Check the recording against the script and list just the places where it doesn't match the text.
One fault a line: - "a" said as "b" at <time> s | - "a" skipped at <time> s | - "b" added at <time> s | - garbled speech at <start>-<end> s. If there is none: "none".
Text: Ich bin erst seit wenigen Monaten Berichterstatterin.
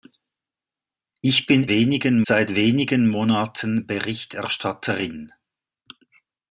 - "erst" said as "wenigen" at 1.7 s